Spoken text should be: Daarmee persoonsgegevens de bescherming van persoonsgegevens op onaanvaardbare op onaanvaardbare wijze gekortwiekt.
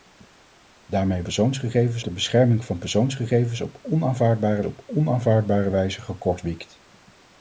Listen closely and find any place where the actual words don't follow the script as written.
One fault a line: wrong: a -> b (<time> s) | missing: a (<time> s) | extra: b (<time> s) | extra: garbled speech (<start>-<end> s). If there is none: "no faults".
no faults